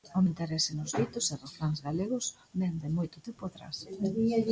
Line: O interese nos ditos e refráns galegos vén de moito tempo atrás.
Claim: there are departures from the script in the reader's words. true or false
false